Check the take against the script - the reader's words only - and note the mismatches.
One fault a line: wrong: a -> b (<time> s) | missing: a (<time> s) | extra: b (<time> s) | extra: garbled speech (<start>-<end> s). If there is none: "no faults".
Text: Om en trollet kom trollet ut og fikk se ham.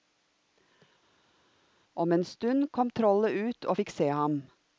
wrong: trollet -> stund (2.2 s)